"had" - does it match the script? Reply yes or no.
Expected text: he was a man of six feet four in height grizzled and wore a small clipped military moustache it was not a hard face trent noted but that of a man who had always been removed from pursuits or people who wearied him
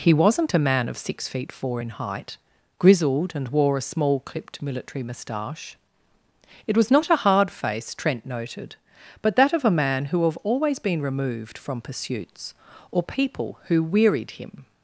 no